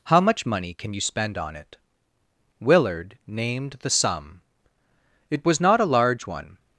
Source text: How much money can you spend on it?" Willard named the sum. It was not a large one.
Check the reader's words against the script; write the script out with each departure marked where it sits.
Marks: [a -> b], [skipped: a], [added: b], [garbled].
How much money can you spend on it?" Willard named the sum. It was not a large one.